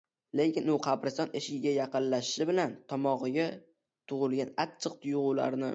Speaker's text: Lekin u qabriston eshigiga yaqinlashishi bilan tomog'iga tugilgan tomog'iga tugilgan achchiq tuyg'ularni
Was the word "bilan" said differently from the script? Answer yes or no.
no